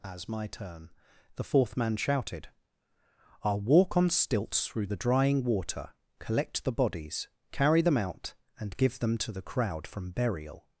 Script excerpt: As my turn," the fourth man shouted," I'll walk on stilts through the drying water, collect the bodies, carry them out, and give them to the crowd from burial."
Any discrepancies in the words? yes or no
no